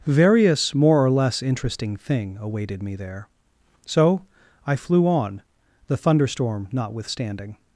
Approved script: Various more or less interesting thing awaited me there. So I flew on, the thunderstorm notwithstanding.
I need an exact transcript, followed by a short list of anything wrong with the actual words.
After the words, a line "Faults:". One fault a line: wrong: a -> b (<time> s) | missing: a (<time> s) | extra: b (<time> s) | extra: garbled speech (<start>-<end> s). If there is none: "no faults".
Various more or less interesting thing awaited me there. So I flew on, the thunderstorm notwithstanding.
Faults:
no faults